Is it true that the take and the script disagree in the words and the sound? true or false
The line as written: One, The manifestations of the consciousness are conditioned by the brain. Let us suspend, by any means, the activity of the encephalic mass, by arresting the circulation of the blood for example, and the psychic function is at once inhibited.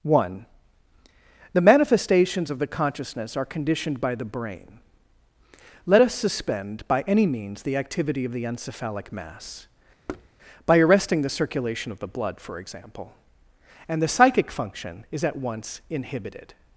true